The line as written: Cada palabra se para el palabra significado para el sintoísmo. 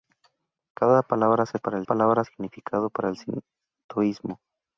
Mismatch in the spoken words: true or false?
false